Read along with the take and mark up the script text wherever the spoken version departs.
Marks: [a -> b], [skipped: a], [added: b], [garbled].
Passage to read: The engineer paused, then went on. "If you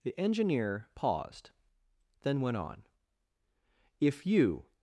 The engineer paused, then went on. "If you